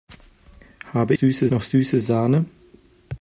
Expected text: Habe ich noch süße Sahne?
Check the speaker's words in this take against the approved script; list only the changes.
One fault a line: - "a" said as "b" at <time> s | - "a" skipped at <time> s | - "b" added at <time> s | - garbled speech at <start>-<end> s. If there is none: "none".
- "ich" said as "süße" at 1.1 s